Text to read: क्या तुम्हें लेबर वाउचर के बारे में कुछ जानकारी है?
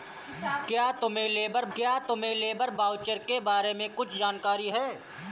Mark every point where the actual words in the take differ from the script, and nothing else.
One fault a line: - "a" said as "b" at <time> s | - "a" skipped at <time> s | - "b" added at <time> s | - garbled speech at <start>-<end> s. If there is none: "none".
- "क्या तुम्हें लेबर" added at 1.7 s